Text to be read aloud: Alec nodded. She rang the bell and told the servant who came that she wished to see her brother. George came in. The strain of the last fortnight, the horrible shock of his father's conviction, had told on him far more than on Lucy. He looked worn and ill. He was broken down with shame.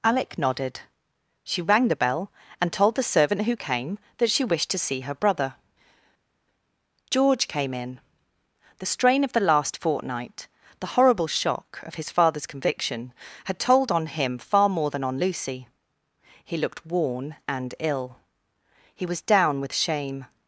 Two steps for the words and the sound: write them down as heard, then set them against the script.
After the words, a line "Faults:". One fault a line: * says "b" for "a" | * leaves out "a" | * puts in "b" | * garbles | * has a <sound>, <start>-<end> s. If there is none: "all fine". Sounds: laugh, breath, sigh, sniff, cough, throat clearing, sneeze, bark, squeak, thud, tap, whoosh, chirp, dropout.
Alec nodded. She rang the bell and told the servant who came that she wished to see her brother. George came in. The strain of the last fortnight, the horrible shock of his father's conviction, had told on him far more than on Lucy. He looked worn and ill. He was down with shame.
Faults:
* leaves out "broken"